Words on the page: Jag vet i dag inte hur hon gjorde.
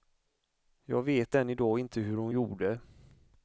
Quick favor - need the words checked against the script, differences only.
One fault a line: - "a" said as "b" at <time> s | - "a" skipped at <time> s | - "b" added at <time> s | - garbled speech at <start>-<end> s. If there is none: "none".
- "än" added at 1.3 s